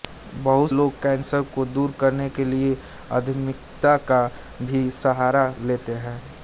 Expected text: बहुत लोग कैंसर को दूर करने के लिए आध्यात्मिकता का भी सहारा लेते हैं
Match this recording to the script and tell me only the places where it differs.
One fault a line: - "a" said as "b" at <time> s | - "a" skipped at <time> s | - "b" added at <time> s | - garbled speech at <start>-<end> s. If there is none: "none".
none